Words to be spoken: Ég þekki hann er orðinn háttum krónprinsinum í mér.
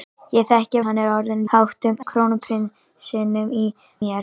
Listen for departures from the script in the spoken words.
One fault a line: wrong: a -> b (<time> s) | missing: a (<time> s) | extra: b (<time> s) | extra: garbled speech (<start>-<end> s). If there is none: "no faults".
no faults